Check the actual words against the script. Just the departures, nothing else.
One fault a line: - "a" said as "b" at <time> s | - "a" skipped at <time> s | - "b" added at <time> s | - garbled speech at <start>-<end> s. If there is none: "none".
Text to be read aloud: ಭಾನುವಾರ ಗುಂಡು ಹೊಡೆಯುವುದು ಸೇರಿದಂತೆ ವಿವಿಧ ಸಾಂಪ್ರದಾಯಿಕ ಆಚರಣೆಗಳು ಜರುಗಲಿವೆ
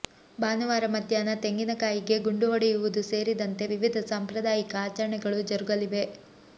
- "ಮಧ್ಯಾಹ್ನ ತೆಂಗಿನಕಾಯಿಗೆ" added at 0.9 s